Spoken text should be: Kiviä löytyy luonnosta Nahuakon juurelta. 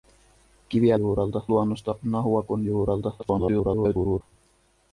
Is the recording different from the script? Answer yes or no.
yes